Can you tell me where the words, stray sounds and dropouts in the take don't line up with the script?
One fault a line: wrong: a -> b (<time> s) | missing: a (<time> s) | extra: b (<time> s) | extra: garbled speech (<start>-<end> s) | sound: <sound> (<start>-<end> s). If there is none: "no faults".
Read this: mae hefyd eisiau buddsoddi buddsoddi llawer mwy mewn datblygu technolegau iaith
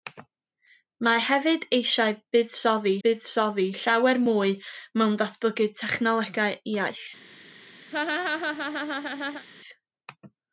sound: laugh (7.9-9.5 s)